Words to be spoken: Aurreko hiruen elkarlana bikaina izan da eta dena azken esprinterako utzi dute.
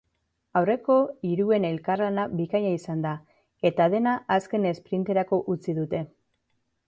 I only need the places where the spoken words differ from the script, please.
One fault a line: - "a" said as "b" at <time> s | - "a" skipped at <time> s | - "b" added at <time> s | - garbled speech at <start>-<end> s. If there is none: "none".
none